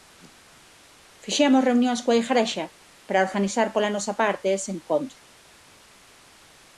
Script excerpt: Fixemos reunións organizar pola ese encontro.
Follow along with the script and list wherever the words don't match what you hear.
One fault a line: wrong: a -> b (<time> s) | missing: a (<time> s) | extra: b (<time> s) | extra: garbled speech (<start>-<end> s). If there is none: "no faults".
extra: coa Igrexa para (2.0 s)
extra: nosa parte (4.0 s)